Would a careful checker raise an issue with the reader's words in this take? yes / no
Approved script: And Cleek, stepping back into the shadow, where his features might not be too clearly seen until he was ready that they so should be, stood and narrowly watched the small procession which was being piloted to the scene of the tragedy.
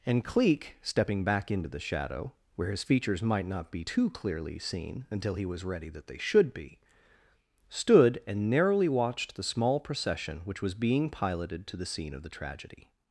yes